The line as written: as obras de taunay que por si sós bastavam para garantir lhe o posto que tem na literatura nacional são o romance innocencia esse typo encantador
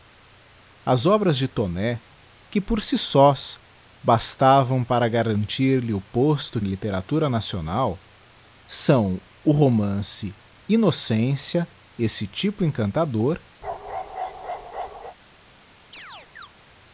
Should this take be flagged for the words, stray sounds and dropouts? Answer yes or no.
yes